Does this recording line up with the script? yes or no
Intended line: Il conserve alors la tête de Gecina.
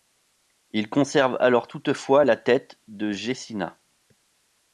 no